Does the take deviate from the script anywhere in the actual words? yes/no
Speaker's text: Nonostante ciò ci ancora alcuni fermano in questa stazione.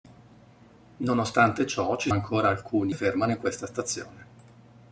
no